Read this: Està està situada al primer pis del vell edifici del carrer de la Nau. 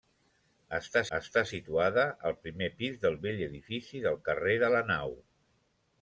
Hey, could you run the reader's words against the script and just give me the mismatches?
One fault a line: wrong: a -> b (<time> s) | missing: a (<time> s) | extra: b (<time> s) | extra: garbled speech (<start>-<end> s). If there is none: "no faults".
no faults